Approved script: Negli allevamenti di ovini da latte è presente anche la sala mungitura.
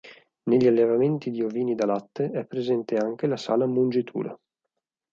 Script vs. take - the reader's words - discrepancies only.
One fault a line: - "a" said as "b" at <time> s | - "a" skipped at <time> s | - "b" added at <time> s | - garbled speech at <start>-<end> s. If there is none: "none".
none